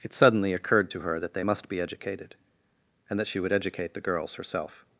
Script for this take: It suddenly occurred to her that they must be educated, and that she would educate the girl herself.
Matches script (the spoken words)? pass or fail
fail